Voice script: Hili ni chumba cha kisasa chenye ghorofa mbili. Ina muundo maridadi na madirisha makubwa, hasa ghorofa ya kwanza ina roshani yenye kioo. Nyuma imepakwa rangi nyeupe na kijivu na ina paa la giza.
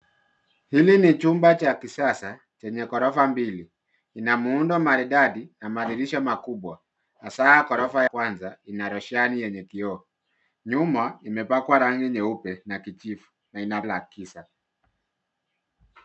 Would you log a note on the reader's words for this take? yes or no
yes